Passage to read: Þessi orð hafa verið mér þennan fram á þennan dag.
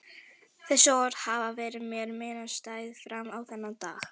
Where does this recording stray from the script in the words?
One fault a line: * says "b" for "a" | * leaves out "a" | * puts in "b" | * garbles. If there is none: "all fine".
* says "minnisstæð" for "þennan"